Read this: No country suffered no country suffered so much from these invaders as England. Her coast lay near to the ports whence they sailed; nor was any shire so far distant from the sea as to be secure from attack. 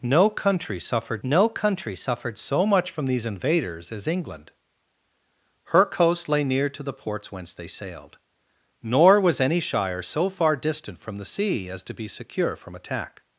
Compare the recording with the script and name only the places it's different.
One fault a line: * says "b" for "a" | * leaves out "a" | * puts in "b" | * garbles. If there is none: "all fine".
all fine